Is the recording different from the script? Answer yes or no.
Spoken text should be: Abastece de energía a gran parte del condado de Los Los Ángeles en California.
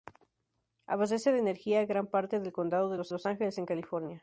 no